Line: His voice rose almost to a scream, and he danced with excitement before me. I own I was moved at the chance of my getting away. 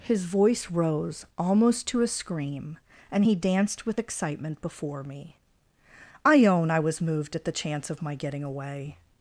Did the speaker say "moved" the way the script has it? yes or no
yes